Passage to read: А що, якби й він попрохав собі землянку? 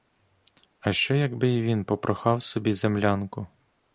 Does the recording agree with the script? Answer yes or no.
yes